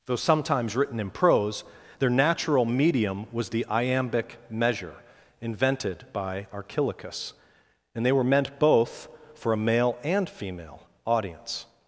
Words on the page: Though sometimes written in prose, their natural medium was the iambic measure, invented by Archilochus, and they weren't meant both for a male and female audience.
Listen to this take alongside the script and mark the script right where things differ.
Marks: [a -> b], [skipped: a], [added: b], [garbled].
Though sometimes written in prose, their natural medium was the iambic measure, invented by Archilochus, and they [weren't -> were] meant both for a male and female audience.